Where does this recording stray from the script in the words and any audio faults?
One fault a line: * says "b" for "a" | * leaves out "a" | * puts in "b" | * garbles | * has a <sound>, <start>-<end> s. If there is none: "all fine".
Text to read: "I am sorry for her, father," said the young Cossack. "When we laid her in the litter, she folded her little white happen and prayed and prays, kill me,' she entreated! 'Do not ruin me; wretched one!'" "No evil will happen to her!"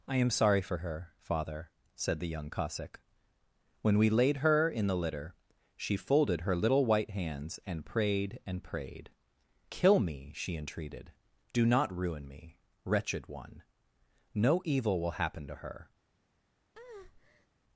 * says "hands" for "happen"
* says "prayed" for "prays"
* has a breath, 16.7-17.5 s